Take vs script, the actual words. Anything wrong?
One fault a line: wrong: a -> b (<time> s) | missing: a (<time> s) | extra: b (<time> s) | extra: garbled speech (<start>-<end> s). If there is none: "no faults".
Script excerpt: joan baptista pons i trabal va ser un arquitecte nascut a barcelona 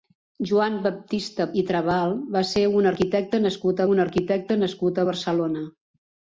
missing: pons (1.5 s)
extra: un arquitecte nascut (4.0 s)